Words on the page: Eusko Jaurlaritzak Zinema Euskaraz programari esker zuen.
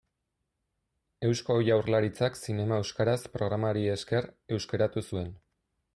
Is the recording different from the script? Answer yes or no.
yes